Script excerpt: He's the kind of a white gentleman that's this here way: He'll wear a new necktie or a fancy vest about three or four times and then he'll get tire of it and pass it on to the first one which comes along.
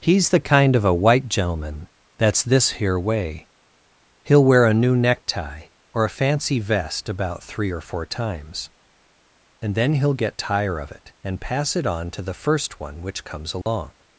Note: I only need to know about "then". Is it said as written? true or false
true